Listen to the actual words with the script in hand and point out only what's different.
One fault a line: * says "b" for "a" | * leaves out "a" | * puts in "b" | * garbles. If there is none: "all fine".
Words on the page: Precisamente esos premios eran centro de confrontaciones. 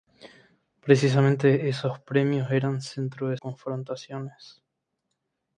all fine